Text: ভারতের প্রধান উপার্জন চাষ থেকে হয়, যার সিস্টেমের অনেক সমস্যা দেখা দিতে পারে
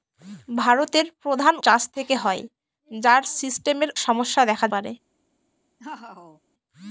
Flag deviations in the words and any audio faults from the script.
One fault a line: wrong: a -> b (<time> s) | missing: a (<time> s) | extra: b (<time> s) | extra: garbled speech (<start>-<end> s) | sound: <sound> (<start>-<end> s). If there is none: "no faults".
missing: উপার্জন (1.5 s)
missing: অনেক (3.9 s)
missing: দিতে (4.7 s)
sound: laugh (5.8-6.4 s)